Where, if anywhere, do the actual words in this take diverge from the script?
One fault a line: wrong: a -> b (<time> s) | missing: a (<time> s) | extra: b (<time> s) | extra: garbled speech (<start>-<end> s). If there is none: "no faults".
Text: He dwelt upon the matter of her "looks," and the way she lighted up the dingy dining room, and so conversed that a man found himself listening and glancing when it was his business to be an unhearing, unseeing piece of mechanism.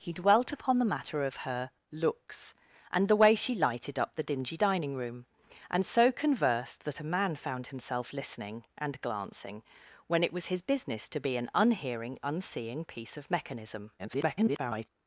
extra: garbled speech (14.0-14.9 s)